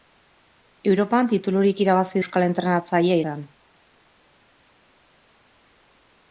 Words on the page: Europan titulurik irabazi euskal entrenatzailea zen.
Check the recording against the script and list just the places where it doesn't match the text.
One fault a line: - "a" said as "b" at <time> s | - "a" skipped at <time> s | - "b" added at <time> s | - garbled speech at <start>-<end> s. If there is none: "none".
none